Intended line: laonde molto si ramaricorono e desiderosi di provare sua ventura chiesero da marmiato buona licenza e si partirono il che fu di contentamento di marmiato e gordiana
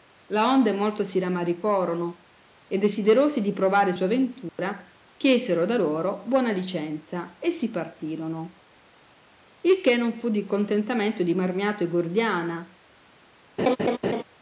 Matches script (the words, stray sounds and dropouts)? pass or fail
fail